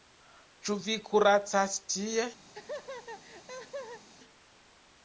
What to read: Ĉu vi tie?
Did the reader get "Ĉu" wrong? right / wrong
right